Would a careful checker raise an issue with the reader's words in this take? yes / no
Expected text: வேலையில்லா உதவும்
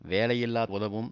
no